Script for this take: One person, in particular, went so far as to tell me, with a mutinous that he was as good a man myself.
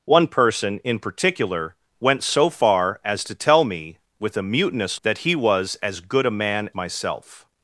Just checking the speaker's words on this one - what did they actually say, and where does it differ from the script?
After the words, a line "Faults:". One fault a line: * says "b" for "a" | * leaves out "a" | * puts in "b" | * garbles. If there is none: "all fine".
One person, in particular, went so far as to tell me, with a mutinous that he was as good a man myself.
Faults:
all fine